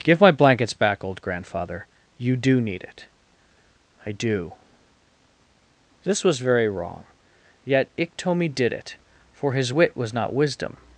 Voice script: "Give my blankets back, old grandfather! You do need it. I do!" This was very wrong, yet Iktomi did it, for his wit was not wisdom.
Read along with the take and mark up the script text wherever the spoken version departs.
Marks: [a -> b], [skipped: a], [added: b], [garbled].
"Give my blankets back, old grandfather! You do need it. I do!" This was very wrong, yet Iktomi did it, for his wit was not wisdom.